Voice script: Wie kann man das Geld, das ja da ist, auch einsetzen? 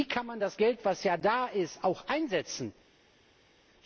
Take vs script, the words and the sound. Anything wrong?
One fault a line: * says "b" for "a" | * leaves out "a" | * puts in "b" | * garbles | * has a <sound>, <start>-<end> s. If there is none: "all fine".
all fine